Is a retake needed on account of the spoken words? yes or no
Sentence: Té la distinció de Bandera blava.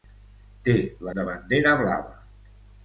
yes